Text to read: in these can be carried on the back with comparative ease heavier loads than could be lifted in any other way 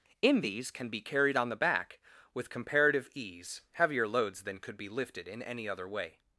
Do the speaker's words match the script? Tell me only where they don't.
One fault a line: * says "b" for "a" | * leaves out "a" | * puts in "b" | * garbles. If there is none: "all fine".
all fine